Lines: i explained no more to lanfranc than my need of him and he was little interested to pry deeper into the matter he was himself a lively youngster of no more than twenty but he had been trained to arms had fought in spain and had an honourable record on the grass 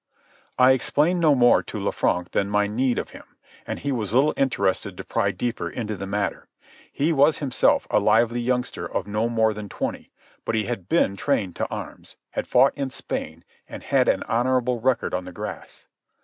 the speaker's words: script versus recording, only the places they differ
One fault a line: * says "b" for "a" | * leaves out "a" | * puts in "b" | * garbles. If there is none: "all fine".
all fine